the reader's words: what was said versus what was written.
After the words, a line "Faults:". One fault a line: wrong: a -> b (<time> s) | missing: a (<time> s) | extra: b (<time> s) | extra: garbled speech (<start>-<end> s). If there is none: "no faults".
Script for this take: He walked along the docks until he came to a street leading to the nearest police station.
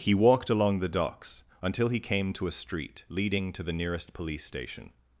He walked along the docks until he came to a street leading to the nearest police station.
Faults:
no faults